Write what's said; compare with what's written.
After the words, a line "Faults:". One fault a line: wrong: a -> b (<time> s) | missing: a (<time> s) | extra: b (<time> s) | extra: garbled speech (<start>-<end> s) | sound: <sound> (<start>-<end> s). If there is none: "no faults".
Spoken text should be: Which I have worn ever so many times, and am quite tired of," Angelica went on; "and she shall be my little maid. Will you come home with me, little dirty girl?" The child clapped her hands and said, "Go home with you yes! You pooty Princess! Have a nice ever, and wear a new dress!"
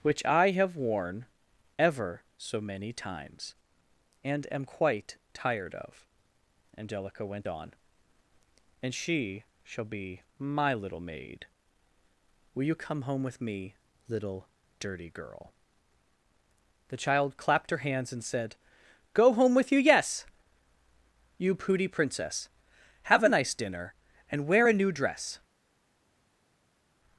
Which I have worn ever so many times, and am quite tired of," Angelica went on; "and she shall be my little maid. Will you come home with me, little dirty girl?" The child clapped her hands and said, "Go home with you yes! You pooty Princess! Have a nice dinner, and wear a new dress!"
Faults:
wrong: ever -> dinner (23.5 s)